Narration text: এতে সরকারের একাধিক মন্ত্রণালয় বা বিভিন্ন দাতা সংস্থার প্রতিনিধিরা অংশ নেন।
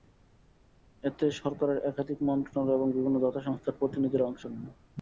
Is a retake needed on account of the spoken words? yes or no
yes